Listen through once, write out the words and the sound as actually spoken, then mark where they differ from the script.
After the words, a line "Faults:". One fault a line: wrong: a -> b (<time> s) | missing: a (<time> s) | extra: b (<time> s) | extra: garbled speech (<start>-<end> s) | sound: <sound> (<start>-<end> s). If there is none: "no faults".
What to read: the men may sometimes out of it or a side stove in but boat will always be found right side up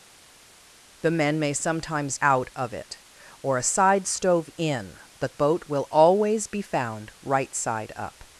the men may sometimes out of it or a side stove in but boat will always be found right side up
Faults:
no faults